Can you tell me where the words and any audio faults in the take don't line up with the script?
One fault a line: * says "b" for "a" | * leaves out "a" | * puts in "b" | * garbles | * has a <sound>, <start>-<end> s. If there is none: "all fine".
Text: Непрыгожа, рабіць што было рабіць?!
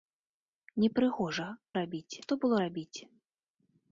all fine